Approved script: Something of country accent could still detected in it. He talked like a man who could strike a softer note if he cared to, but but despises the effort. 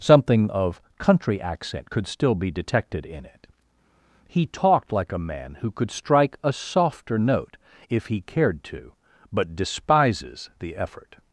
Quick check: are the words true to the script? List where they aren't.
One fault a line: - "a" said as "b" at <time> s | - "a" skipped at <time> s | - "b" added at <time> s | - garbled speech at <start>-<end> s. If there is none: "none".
- "be" added at 2.3 s
- "but" skipped at 9.6 s